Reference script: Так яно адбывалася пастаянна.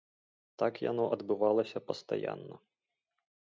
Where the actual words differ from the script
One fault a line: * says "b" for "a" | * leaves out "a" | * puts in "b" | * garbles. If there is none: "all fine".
all fine